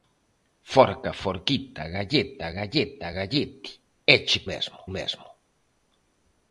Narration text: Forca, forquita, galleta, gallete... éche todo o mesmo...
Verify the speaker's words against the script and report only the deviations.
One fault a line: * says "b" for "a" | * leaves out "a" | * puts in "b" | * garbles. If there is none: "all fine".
* puts in "galleta"
* says "mesmo" for "todo"